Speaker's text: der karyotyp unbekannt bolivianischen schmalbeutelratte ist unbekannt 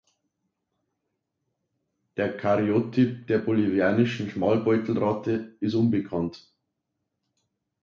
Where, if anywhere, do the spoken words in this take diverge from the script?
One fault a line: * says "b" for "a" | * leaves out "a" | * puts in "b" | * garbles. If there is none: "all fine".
* says "der" for "unbekannt"